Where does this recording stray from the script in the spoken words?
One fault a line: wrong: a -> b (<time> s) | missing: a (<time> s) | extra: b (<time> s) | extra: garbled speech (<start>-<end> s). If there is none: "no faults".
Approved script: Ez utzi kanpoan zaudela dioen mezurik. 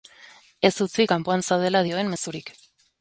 no faults